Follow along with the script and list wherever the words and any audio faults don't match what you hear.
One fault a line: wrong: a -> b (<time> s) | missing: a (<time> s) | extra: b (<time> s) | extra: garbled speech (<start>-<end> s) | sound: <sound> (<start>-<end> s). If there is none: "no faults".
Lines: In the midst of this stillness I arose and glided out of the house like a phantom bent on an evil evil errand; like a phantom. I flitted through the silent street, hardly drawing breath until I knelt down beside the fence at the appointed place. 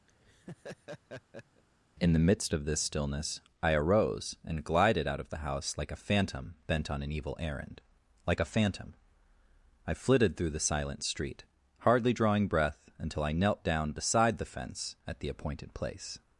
sound: laugh (0.1-1.6 s)
missing: evil (7.4 s)